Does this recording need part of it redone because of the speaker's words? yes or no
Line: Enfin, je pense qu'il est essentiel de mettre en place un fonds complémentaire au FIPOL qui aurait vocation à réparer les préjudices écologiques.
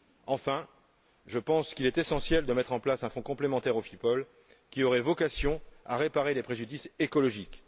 no